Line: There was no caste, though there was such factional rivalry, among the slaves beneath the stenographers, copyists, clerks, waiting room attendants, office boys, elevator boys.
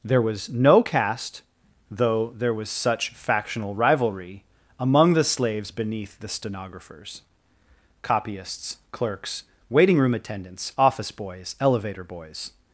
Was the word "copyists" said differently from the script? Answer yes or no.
no